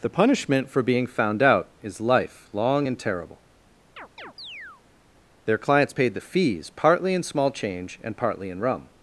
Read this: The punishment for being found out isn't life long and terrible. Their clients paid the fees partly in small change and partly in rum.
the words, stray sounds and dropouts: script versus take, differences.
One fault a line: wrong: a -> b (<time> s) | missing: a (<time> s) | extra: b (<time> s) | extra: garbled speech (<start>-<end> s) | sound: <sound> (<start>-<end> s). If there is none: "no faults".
wrong: isn't -> is (1.8 s)
sound: chirp (4.0-4.8 s)